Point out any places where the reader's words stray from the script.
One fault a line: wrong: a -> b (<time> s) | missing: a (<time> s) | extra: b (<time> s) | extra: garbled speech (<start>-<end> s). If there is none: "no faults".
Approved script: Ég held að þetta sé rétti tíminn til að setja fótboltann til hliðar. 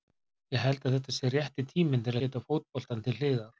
missing: að (2.2 s)